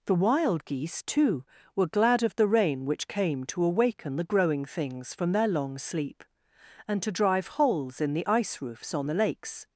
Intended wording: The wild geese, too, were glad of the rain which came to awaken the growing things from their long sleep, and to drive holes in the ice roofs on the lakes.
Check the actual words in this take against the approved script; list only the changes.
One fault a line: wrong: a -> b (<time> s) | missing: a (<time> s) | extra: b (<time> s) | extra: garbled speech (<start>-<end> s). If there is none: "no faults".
no faults